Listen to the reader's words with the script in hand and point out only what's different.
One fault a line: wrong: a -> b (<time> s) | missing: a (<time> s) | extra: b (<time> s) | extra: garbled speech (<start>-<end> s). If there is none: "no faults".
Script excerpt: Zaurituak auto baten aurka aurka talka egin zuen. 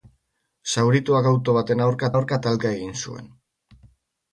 no faults